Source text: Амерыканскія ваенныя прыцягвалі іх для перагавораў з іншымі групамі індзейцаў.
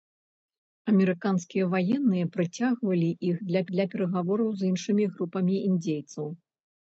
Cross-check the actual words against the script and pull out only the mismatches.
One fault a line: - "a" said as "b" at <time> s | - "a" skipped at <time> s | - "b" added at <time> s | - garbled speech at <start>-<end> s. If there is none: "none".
- "для" added at 3.7 s